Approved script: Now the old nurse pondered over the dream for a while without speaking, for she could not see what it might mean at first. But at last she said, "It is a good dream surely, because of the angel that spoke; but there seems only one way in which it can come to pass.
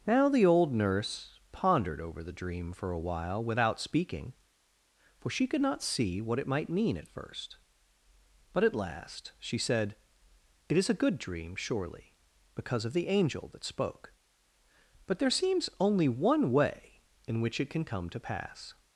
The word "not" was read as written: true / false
true